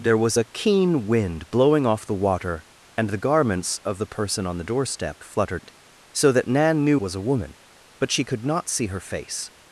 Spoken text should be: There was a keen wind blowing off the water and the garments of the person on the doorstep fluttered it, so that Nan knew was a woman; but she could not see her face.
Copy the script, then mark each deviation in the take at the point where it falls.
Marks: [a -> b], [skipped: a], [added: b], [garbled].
There was a keen wind blowing off the water and the garments of the person on the doorstep fluttered it, so that Nan knew was a woman; but she could not see her face.